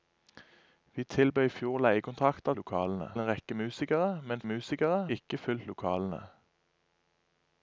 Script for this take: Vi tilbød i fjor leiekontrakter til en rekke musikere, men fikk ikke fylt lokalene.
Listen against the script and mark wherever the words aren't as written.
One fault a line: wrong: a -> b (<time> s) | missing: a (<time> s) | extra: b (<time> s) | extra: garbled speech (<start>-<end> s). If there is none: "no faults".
wrong: til -> lokalene (2.6 s)
wrong: fikk -> musikere (4.4 s)